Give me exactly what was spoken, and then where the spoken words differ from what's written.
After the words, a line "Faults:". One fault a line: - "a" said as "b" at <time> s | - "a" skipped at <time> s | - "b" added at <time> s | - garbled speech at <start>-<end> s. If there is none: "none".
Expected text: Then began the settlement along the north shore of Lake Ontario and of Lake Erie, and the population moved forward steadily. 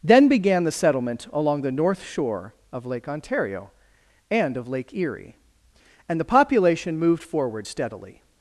Then began the settlement along the north shore of Lake Ontario and of Lake Erie, and the population moved forward steadily.
Faults:
none